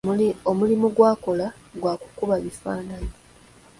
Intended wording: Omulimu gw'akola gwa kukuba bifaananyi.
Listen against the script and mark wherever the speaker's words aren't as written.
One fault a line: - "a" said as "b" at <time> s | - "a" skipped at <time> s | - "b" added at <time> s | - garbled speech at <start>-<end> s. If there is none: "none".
none